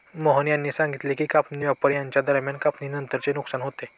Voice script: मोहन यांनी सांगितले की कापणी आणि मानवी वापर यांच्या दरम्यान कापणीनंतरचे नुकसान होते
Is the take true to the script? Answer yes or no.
no